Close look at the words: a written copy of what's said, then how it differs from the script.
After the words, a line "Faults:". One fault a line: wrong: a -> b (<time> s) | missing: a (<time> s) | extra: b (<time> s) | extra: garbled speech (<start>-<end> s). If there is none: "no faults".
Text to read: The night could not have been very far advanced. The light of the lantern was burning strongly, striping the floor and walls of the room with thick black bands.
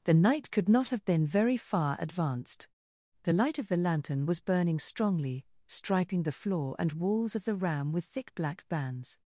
The night could not have been very far advanced. The light of the lantern was burning strongly, striping the floor and walls of the ram with thick black bands.
Faults:
wrong: room -> ram (7.5 s)